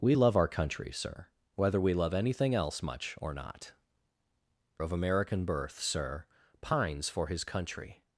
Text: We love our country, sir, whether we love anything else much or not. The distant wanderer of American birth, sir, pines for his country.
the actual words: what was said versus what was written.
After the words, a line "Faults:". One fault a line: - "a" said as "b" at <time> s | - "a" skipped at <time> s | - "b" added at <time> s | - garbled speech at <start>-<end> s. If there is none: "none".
We love our country, sir, whether we love anything else much or not. Of American birth, sir, pines for his country.
Faults:
- "The distant wanderer" skipped at 3.7 s